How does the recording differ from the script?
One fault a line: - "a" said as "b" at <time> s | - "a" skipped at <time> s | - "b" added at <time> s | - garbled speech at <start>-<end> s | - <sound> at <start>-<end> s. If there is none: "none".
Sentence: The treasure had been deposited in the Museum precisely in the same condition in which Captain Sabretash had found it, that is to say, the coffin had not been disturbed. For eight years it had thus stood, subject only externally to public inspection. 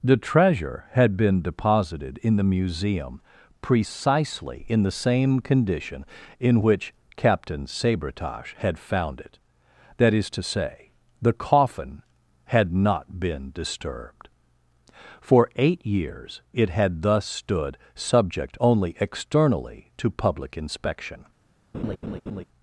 - laugh at 21.7-22.4 s